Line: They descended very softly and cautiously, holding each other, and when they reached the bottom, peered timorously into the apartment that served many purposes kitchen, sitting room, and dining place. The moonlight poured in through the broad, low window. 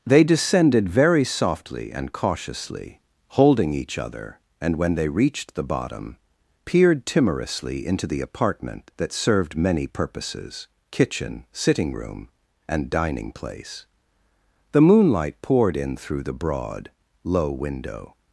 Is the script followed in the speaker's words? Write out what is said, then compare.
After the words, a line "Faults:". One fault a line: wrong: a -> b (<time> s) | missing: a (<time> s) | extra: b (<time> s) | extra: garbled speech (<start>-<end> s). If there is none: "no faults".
They descended very softly and cautiously, holding each other, and when they reached the bottom, peered timorously into the apartment that served many purposes kitchen, sitting room, and dining place. The moonlight poured in through the broad, low window.
Faults:
no faults